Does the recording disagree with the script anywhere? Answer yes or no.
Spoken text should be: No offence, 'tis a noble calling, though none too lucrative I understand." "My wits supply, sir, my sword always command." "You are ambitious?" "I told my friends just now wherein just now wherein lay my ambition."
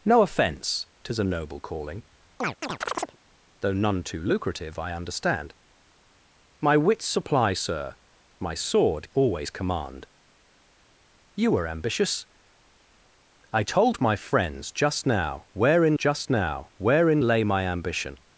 no